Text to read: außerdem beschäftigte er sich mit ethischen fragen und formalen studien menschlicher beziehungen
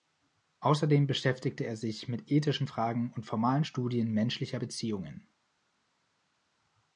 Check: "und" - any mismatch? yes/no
no